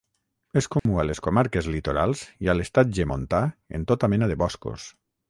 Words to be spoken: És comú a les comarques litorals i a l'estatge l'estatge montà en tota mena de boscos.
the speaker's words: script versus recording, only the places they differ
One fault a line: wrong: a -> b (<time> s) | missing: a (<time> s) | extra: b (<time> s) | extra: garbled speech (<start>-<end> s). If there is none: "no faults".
missing: l'estatge (3.0 s)